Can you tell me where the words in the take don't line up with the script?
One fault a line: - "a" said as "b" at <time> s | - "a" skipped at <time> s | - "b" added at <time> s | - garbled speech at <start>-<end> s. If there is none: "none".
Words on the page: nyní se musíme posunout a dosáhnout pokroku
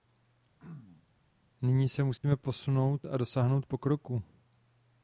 none